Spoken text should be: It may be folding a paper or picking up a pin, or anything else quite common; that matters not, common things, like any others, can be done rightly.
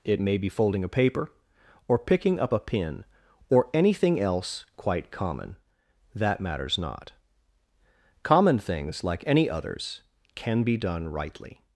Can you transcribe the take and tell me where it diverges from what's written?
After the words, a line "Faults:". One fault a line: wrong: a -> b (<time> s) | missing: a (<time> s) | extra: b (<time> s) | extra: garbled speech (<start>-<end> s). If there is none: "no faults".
It may be folding a paper or picking up a pin, or anything else quite common; that matters not, common things, like any others, can be done rightly.
Faults:
no faults